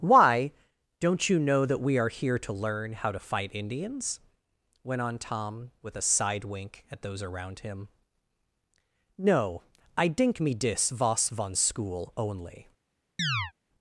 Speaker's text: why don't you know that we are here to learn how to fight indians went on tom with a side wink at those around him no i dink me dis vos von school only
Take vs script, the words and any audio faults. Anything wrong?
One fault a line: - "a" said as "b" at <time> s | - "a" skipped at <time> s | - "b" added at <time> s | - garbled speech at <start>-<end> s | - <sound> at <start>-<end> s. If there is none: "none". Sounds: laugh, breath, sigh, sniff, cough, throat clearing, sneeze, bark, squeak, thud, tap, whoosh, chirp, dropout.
- chirp at 13.2-13.5 s